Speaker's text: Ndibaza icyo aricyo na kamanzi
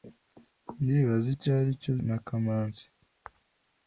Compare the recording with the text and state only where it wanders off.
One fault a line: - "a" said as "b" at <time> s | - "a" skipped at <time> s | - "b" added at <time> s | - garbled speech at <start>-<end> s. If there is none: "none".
none